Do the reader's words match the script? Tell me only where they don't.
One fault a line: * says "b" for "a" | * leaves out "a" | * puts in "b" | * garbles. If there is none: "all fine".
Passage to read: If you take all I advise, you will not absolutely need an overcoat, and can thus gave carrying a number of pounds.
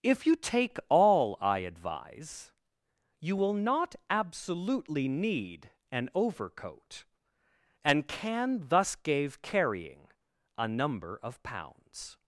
all fine